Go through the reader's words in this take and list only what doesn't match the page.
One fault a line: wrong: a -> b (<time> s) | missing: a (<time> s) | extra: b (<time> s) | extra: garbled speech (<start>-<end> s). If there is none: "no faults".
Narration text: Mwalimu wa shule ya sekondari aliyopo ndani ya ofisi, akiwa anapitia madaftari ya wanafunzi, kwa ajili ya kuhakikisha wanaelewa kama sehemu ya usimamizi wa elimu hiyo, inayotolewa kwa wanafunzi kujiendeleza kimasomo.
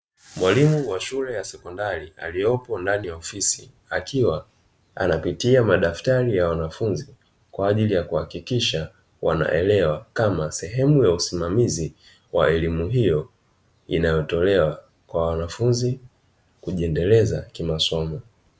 no faults